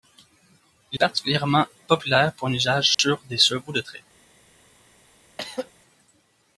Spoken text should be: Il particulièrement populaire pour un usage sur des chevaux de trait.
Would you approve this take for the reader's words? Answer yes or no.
yes